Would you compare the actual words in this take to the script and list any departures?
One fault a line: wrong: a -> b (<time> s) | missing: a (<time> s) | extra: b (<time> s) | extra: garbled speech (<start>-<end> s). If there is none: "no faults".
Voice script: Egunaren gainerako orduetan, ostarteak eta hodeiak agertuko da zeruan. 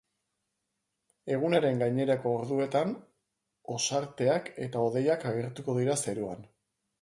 wrong: da -> dira (5.8 s)